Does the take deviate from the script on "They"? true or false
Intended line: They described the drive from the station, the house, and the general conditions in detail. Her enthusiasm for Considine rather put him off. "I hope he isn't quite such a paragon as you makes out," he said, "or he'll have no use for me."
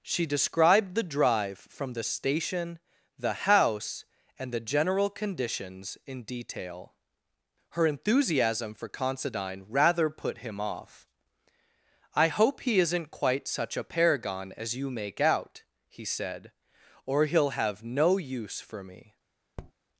true